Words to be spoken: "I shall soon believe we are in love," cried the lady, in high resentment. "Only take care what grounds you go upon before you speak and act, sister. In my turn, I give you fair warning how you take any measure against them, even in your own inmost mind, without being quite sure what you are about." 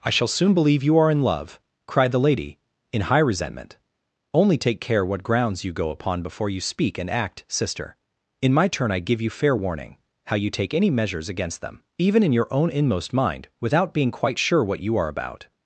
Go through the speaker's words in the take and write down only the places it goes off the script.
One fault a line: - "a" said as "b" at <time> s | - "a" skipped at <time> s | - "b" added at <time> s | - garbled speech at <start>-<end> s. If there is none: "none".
- "we" said as "you" at 0.8 s
- "measure" said as "measures" at 10.9 s